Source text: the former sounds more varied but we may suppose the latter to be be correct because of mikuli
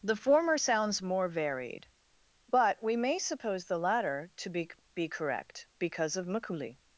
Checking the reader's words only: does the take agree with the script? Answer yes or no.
yes